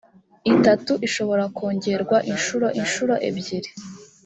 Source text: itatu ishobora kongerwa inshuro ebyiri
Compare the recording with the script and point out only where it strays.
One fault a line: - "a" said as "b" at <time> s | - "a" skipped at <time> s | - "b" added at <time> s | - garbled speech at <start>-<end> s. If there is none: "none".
- "inshuro" added at 2.8 s